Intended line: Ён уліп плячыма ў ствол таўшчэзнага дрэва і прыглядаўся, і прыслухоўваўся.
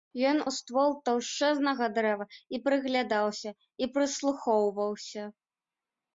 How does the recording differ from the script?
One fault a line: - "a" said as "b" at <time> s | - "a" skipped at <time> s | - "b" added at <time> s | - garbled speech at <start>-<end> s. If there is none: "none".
- "уліп плячыма" skipped at 0.4 s